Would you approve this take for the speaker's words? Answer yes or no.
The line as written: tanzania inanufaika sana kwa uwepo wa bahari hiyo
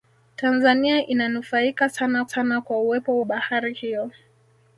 no